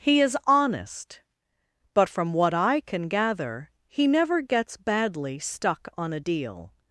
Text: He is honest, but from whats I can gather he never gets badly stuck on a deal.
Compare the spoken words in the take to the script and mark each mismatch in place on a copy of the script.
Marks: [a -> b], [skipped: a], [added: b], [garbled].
He is honest, but from [whats -> what] I can gather he never gets badly stuck on a deal.